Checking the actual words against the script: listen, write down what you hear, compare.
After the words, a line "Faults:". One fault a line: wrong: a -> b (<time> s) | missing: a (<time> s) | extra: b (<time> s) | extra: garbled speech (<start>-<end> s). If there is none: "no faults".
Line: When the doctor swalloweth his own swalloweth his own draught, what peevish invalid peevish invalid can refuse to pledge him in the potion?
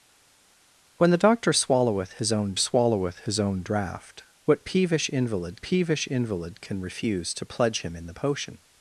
When the doctor swalloweth his own swalloweth his own draught, what peevish invalid peevish invalid can refuse to pledge him in the potion?
Faults:
no faults